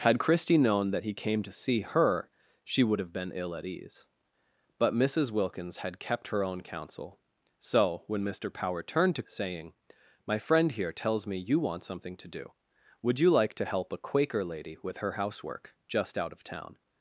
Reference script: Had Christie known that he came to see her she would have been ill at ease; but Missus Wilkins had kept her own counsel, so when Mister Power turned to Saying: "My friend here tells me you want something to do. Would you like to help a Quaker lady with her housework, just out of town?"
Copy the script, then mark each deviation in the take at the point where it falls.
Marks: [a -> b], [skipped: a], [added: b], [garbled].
Had Christie known that he came to see her she would have been ill at ease; but Missus Wilkins had kept her own counsel, so when Mister Power turned to Saying: "My friend here tells me you want something to do. Would you like to help a Quaker lady with her housework, just out of town?"